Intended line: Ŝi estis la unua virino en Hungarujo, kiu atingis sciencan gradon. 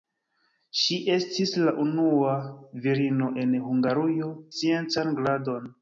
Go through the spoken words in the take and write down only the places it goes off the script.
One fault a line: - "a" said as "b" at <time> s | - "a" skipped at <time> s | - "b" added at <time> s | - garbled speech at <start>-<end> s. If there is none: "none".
- "kiu atingis" skipped at 4.3 s